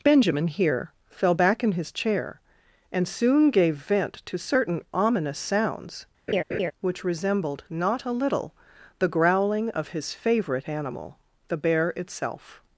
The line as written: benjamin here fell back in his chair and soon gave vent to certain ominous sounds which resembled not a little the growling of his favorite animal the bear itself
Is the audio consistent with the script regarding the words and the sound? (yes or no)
no